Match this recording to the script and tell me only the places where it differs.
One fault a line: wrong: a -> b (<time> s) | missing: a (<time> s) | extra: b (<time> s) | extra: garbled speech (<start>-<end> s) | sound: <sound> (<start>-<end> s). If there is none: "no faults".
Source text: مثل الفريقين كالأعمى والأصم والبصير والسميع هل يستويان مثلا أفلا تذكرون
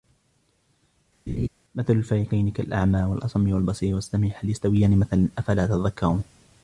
sound: laugh (1.3-1.5 s)